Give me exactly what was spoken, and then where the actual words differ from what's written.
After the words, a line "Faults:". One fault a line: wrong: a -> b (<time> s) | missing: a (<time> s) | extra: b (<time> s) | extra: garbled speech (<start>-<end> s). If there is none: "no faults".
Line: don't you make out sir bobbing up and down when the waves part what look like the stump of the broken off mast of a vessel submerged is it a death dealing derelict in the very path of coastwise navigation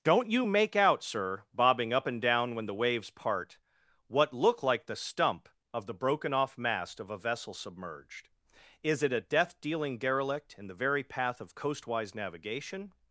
don't you make out sir bobbing up and down when the waves part what look like the stump of the broken off mast of a vessel submerged is it a death dealing derelict in the very path of coastwise navigation
Faults:
no faults